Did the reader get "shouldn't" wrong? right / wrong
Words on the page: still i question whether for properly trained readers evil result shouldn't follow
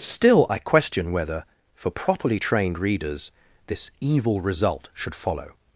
wrong